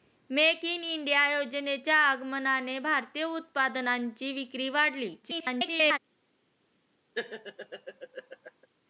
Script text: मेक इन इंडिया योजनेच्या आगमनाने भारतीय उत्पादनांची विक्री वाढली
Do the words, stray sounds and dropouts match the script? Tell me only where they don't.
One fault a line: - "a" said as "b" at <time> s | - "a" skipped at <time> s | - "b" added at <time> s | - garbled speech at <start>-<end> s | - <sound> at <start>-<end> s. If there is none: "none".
- garbled speech at 5.2-6.0 s
- laugh at 7.1-8.7 s